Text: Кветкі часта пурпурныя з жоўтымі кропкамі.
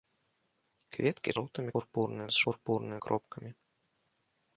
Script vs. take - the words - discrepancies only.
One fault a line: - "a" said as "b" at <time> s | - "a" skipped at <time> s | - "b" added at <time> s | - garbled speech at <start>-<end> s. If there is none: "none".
- "часта" said as "жоўтымі" at 1.4 s
- "жоўтымі" said as "пурпурныя" at 2.5 s